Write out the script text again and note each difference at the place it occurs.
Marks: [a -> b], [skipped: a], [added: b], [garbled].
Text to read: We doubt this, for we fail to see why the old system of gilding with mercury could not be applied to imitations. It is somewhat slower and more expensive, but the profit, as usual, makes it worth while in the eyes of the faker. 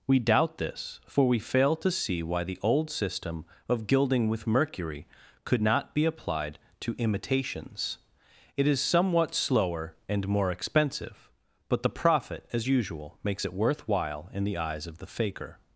We doubt this, for we fail to see why the old system of gilding with mercury could not be applied to imitations. It is somewhat slower and more expensive, but the profit, as usual, makes it worth while in the eyes of the faker.